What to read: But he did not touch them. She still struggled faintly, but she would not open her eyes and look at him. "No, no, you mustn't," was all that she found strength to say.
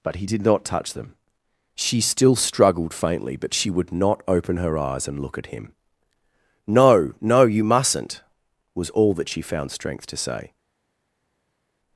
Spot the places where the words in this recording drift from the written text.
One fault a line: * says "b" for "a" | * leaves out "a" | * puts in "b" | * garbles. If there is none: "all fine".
all fine